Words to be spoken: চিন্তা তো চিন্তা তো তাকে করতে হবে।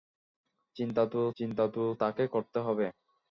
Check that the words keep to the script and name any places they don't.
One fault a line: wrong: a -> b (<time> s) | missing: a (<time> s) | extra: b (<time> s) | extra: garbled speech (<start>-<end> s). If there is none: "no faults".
no faults